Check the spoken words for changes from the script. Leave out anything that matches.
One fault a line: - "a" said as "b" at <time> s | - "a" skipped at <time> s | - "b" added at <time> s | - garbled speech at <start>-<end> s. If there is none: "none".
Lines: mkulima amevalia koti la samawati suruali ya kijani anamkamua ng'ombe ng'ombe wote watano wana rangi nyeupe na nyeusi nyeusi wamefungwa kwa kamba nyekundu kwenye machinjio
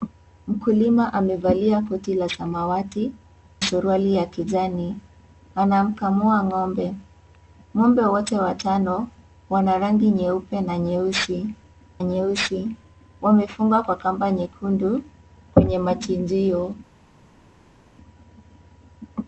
none